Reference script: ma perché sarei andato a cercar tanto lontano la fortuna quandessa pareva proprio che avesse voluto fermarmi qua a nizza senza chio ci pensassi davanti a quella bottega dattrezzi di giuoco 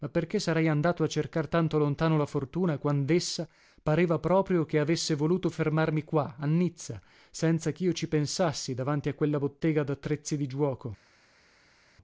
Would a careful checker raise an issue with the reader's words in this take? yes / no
no